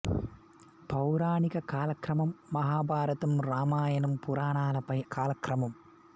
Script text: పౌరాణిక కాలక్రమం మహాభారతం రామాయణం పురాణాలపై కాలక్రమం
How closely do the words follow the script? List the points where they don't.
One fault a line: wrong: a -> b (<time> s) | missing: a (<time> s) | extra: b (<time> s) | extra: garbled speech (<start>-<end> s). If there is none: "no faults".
no faults